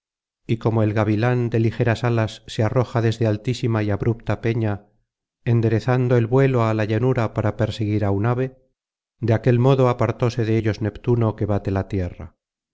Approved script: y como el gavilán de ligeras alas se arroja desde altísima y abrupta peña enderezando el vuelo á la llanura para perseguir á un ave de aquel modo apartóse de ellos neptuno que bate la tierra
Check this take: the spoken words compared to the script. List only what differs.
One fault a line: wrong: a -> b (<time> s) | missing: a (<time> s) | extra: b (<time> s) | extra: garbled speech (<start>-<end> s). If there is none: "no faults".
no faults